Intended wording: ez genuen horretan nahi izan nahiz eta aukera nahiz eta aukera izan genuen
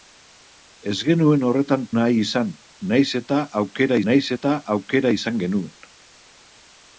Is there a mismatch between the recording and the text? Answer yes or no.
no